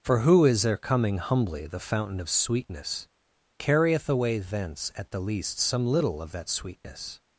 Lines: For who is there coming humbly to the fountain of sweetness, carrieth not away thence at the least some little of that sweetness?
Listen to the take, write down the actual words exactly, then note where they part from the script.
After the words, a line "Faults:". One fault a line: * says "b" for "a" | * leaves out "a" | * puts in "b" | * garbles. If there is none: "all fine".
For who is there coming humbly the fountain of sweetness, carrieth away thence at the least some little of that sweetness?
Faults:
* leaves out "to"
* leaves out "not"